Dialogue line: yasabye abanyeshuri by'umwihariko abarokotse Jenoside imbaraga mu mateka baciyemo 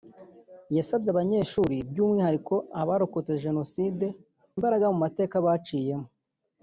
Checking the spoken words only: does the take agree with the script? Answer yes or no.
yes